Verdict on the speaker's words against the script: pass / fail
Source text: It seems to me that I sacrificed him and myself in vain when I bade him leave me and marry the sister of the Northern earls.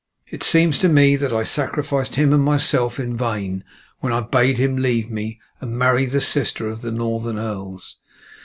pass